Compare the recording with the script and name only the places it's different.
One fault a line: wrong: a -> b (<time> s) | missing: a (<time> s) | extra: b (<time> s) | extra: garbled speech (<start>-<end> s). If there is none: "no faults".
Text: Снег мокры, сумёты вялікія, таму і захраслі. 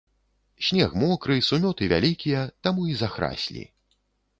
no faults